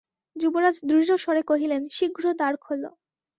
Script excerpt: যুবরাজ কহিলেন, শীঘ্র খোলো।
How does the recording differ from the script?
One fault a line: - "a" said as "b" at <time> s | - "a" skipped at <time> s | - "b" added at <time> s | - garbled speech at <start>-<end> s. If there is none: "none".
- "দৃঢ়স্বরে" added at 0.8 s
- "দ্বার" added at 2.3 s